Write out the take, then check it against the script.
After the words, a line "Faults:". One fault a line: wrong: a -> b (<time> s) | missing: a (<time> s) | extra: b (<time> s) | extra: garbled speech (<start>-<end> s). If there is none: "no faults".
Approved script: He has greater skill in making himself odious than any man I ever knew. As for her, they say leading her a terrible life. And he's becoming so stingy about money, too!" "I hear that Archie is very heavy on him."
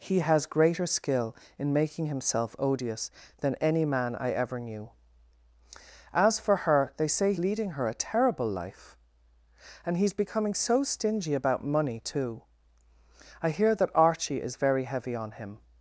He has greater skill in making himself odious than any man I ever knew. As for her, they say leading her a terrible life. And he's becoming so stingy about money, too!" "I hear that Archie is very heavy on him."
Faults:
no faults